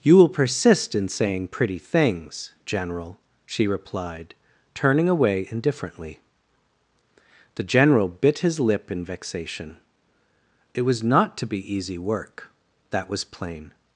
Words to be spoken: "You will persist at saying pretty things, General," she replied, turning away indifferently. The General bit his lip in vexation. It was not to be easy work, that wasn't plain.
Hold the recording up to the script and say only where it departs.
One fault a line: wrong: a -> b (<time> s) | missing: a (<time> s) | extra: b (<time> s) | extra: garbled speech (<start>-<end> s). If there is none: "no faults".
wrong: at -> in (0.9 s)
wrong: wasn't -> was (13.1 s)